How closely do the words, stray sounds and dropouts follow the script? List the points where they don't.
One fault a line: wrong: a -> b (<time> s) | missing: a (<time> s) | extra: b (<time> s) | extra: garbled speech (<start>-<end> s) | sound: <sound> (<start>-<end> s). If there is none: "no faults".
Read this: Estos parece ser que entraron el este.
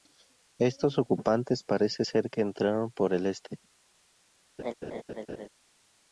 extra: ocupantes (1.0 s)
extra: por (2.9 s)
sound: laugh (4.6-5.5 s)